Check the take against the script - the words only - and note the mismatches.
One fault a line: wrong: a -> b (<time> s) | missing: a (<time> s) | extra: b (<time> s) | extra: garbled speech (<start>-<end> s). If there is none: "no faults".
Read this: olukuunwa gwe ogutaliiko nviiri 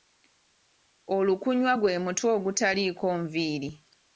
extra: mutwe (2.0 s)